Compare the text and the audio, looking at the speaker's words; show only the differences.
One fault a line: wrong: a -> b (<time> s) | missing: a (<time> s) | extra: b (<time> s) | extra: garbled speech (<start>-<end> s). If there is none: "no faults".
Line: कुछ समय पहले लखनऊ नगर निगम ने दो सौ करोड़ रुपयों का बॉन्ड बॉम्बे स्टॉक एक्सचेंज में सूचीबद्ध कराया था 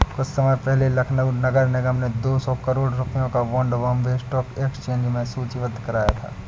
no faults